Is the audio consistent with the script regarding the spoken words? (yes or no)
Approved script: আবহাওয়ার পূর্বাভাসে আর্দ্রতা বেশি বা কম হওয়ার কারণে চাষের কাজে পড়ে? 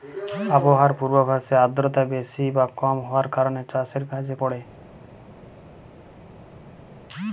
yes